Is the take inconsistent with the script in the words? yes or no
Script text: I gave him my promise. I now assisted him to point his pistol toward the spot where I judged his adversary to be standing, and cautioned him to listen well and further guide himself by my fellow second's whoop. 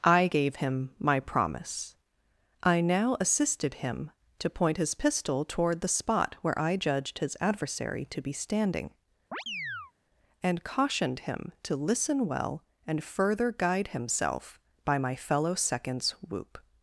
no